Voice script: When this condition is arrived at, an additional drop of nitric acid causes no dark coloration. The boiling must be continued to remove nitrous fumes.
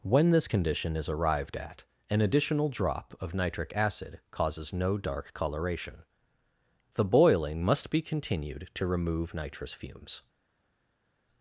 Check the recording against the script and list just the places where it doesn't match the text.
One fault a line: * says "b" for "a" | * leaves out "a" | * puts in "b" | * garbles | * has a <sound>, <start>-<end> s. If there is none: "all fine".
all fine